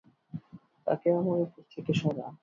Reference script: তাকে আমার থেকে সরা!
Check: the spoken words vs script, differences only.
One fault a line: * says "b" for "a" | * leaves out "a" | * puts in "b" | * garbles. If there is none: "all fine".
* puts in "উপর"